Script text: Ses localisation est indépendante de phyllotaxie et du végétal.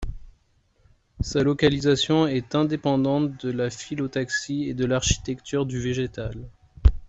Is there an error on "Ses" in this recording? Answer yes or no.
yes